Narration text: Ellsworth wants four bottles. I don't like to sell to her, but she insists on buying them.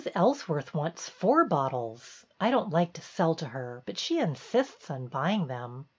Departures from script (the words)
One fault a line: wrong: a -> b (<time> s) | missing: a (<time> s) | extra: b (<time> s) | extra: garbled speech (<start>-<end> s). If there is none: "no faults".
no faults